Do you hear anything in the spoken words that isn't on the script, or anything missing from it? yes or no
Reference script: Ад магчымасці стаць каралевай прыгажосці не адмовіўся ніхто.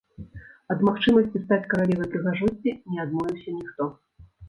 no